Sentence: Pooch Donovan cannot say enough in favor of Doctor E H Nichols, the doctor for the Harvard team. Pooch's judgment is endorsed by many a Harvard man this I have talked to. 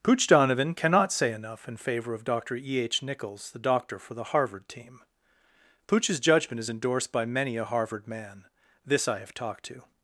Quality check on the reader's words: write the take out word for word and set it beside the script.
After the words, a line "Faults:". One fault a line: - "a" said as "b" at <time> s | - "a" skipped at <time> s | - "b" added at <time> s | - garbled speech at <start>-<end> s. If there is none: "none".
Pooch Donovan cannot say enough in favor of Doctor E H Nichols, the doctor for the Harvard team. Pooch's judgment is endorsed by many a Harvard man this I have talked to.
Faults:
none